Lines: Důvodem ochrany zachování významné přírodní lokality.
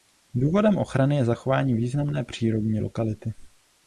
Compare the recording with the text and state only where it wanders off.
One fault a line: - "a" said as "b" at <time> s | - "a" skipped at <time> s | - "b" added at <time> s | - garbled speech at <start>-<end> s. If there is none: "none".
- "je" added at 1.1 s